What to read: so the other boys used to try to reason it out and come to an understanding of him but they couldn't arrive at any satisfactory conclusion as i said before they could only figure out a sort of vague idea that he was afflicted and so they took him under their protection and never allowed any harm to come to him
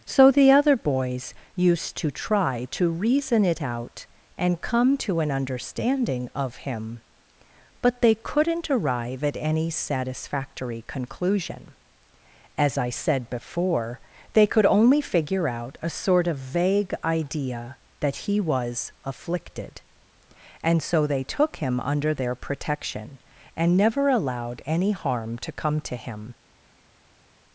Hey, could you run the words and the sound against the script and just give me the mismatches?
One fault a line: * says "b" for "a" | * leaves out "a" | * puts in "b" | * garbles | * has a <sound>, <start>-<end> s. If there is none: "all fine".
all fine